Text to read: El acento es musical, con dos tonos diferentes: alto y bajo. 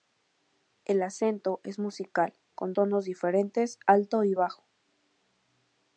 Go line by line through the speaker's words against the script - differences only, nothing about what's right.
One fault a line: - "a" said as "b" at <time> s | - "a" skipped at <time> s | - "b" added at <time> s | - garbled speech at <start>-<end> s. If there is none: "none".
- "dos" skipped at 2.7 s